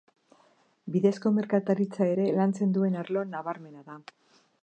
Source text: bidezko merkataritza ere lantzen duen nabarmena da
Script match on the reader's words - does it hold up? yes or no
no